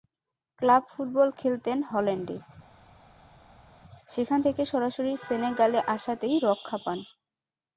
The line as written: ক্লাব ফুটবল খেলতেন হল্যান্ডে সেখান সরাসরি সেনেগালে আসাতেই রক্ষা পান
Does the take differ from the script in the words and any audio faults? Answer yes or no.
yes